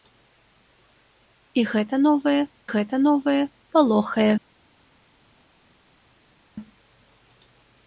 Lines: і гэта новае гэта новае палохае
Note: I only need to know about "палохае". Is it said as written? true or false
true